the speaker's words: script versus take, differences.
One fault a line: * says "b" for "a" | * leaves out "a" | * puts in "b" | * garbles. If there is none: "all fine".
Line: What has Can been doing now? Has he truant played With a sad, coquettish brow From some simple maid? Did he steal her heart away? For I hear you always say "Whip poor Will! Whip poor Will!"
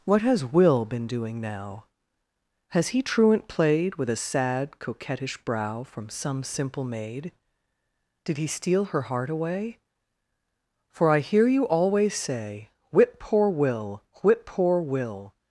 * says "Will" for "Can"